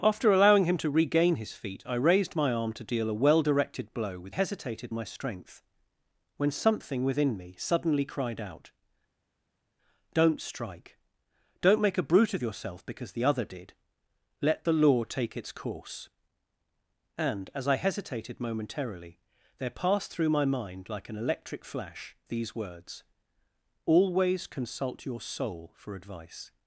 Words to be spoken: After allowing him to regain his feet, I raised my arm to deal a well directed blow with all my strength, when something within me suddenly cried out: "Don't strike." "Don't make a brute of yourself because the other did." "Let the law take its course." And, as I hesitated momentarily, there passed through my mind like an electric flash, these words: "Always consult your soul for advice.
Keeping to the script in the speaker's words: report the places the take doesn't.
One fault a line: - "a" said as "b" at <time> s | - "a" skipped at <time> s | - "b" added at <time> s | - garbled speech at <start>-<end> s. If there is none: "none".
- "all" said as "hesitated" at 4.3 s